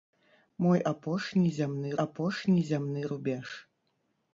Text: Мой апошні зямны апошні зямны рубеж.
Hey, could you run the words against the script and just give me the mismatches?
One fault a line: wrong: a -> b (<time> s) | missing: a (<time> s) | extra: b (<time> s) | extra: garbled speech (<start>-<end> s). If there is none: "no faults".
no faults